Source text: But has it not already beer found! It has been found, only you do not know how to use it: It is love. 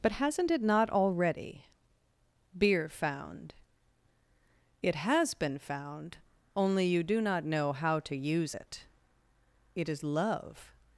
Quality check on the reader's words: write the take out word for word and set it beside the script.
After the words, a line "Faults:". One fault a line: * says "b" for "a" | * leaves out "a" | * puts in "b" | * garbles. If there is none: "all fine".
But hasn't it not already beer found! It has been found, only you do not know how to use it: It is love.
Faults:
* says "hasn't" for "has"